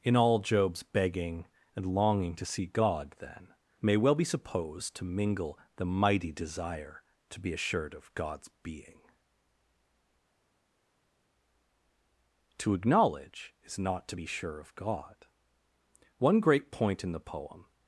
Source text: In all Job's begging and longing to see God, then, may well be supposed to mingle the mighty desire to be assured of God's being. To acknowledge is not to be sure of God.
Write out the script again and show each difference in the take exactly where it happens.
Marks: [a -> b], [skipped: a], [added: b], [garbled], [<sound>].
In all Job's begging and longing to see God, then, may well be supposed to mingle the mighty desire to be assured of God's being. To acknowledge is not to be sure of God. [added: One great point in the poem]